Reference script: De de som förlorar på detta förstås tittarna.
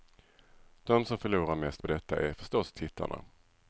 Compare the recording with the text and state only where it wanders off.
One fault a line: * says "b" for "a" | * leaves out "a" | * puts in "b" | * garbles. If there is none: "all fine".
* leaves out "de"
* puts in "mest"
* puts in "är"